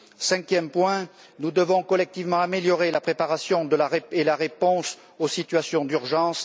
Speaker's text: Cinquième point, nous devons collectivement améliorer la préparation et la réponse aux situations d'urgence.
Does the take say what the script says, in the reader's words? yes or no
yes